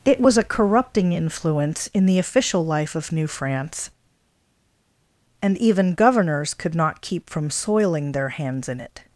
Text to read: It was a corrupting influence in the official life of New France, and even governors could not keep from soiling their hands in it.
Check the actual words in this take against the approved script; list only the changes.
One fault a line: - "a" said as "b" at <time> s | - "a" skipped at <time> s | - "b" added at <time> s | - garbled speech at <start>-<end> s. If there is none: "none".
none